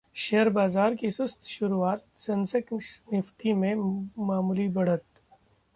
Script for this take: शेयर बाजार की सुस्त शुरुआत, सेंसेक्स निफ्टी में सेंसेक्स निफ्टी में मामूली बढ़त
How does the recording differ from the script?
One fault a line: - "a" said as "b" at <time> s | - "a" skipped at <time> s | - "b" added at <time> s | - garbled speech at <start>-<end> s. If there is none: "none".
- "सेंसेक्स निफ्टी में" skipped at 3.7 s